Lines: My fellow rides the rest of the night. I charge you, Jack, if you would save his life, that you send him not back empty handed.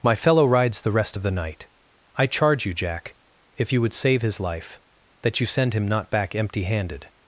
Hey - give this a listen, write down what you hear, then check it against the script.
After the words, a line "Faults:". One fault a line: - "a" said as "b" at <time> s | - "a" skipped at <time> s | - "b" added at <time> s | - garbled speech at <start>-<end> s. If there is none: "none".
My fellow rides the rest of the night. I charge you, Jack, if you would save his life, that you send him not back empty handed.
Faults:
none